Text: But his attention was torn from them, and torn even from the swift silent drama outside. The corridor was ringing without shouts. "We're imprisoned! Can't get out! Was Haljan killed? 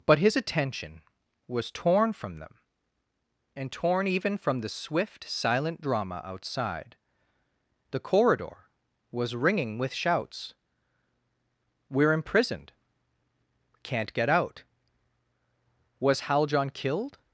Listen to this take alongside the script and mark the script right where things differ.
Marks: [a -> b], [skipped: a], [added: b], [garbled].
But his attention was torn from them, and torn even from the swift silent drama outside. The corridor was ringing [without -> with] shouts. "We're imprisoned! Can't get out! Was Haljan killed?